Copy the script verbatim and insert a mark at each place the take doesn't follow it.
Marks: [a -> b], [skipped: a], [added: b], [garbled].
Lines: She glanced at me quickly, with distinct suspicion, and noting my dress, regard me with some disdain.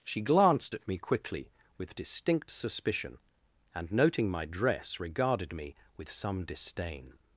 She glanced at me quickly, with distinct suspicion, and noting my dress, [regard -> regarded] me with some disdain.